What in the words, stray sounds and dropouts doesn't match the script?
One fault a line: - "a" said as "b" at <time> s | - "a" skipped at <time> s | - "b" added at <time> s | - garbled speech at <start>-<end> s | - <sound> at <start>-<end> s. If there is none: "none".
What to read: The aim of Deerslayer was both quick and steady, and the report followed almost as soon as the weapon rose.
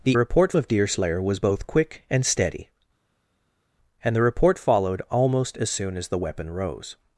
- "aim" said as "report" at 0.1 s